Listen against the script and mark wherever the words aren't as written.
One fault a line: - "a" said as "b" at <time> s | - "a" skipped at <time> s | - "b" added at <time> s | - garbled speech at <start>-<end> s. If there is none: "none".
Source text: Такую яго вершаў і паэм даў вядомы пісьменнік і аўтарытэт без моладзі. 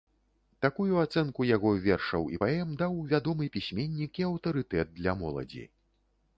- "ацэнку" added at 1.0 s
- "без" said as "для" at 5.0 s